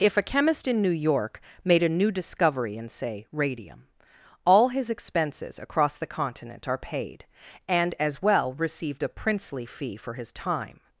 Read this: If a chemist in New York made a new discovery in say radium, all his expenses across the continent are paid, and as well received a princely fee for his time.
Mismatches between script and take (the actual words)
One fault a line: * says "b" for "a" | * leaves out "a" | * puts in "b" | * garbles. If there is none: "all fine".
all fine